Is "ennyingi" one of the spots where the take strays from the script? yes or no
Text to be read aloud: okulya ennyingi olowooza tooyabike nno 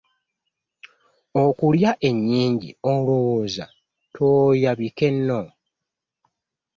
no